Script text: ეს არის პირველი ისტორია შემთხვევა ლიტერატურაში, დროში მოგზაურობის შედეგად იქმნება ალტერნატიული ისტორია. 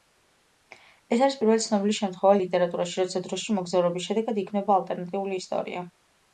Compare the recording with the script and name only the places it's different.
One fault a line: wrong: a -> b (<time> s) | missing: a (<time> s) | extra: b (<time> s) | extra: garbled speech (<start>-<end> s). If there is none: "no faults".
wrong: ისტორია -> ცნობილი (1.6 s)
extra: როცა (3.0 s)